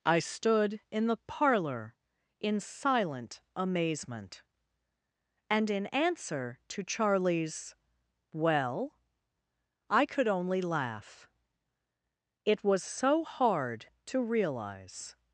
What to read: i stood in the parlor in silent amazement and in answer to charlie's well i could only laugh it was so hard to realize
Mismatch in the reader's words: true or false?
false